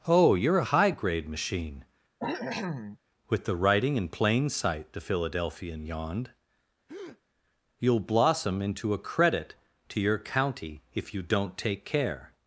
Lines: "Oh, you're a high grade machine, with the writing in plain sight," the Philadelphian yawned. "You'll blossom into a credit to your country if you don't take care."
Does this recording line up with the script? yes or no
no